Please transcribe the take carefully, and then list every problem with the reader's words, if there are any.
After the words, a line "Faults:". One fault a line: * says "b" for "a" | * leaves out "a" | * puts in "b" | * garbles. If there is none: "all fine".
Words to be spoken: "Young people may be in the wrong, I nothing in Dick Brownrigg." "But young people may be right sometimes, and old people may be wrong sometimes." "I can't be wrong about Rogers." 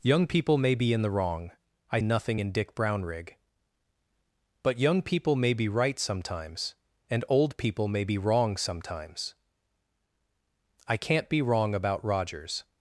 "Young people may be in the wrong, I nothing in Dick Brownrigg." "But young people may be right sometimes, and old people may be wrong sometimes." "I can't be wrong about Rogers."
Faults:
all fine